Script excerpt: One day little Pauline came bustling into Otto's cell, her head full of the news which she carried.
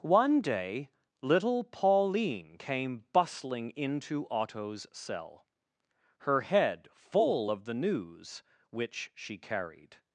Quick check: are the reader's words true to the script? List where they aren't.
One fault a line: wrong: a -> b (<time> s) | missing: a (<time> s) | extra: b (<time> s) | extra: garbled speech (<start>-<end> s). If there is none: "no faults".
no faults